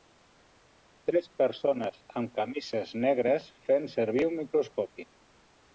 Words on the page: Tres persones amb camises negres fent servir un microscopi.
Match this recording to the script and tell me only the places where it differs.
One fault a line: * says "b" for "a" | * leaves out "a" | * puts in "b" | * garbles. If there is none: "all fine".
all fine